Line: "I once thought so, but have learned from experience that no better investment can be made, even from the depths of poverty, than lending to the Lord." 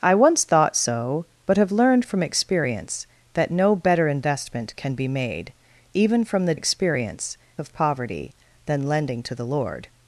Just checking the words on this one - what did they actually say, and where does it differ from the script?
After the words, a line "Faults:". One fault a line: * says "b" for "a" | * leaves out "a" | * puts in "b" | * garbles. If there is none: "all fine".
"I once thought so, but have learned from experience that no better investment can be made, even from the experience of poverty, than lending to the Lord."
Faults:
* says "experience" for "depths"